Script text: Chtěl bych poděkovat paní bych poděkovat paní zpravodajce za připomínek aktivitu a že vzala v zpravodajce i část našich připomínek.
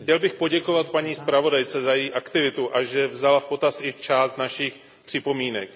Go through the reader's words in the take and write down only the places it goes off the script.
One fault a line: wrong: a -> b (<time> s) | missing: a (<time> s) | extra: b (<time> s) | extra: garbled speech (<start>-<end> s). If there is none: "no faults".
missing: bych poděkovat paní (1.1 s)
wrong: připomínek -> její (1.9 s)
wrong: zpravodajce -> potaz (3.4 s)